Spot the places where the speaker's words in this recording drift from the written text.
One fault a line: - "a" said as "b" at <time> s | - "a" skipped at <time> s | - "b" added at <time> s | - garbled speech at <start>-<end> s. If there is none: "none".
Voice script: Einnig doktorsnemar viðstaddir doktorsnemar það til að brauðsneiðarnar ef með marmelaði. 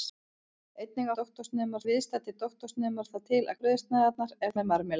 none